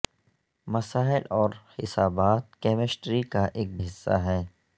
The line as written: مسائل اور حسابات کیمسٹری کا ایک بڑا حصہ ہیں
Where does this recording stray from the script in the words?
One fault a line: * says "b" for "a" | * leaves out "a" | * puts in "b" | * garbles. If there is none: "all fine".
* leaves out "بڑا"